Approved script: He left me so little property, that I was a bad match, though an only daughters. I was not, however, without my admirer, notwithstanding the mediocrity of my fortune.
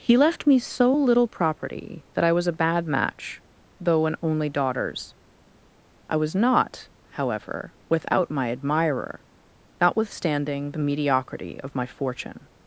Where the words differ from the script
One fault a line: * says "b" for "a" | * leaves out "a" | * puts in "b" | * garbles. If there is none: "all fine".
all fine